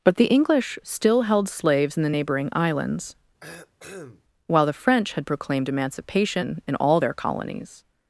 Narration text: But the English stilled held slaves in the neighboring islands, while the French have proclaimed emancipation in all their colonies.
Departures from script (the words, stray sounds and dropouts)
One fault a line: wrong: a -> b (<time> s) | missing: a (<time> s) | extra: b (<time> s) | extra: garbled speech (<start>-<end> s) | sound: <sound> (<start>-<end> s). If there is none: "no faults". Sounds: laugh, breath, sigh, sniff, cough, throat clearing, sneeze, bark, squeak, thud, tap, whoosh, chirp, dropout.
wrong: stilled -> still (0.8 s)
sound: cough (3.4-4.2 s)
wrong: have -> had (5.1 s)